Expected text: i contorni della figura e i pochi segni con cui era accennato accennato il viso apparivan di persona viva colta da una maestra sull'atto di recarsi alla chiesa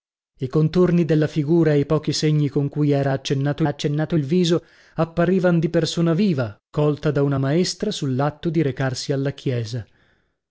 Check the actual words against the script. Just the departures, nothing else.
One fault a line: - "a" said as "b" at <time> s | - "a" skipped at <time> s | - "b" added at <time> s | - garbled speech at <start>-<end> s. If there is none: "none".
none